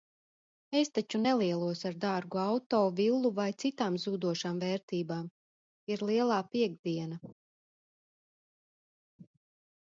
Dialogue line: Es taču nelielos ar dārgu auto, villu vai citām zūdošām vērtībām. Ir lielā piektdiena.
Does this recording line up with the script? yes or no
yes